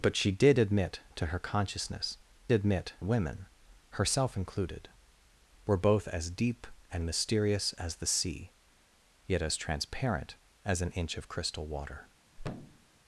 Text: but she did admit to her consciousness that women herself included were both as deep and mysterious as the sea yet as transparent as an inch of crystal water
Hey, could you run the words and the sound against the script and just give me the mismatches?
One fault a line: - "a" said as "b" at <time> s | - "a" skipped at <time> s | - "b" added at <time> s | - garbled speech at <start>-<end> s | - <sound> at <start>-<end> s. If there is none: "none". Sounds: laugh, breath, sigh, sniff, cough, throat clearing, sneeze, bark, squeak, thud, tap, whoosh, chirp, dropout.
- "that" said as "admit" at 2.5 s
- thud at 12.4-12.9 s